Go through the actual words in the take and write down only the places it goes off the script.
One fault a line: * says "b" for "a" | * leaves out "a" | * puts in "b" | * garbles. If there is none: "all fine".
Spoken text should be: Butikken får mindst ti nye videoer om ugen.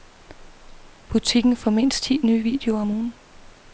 all fine